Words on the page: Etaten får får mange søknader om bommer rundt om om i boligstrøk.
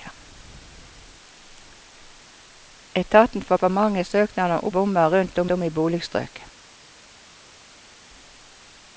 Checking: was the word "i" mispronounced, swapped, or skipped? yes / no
no